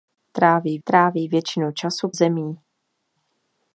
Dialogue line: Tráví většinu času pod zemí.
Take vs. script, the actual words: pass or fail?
fail